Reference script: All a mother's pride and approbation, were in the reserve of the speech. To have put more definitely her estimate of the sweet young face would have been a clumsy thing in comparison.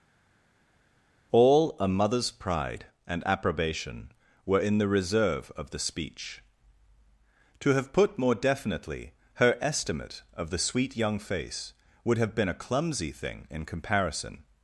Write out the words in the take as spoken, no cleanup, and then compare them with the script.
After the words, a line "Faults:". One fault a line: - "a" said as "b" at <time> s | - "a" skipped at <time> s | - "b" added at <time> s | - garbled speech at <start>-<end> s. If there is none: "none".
All a mother's pride and approbation, were in the reserve of the speech. To have put more definitely her estimate of the sweet young face would have been a clumsy thing in comparison.
Faults:
none